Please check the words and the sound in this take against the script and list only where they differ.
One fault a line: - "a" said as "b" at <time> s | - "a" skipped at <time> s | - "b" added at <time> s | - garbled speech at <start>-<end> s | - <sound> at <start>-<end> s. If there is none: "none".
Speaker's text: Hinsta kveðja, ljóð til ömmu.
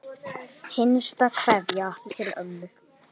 - "ljóð" skipped at 1.9 s